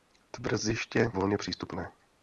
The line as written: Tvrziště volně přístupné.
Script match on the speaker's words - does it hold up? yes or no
yes